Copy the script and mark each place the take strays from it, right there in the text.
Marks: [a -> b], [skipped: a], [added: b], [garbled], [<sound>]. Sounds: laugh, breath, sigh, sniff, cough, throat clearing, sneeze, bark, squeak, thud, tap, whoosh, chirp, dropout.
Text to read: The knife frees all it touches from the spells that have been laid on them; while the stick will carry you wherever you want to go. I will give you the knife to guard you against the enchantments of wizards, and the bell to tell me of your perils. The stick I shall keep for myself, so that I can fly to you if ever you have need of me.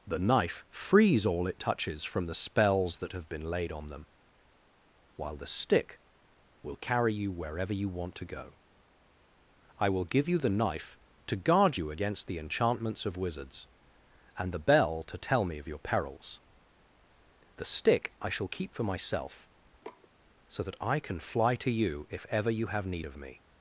The knife frees all it touches from the spells that have been laid on them; while the stick will carry you wherever you want to go. I will give you the knife to guard you against the enchantments of wizards, and the bell to tell me of your perils. The stick I shall keep for myself, [sniff] so that I can fly to you if ever you have need of me.